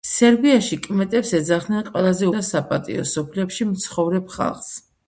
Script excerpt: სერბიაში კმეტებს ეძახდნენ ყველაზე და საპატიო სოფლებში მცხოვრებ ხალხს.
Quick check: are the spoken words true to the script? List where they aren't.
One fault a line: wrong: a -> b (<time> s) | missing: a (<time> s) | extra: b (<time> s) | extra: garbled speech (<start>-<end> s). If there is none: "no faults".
no faults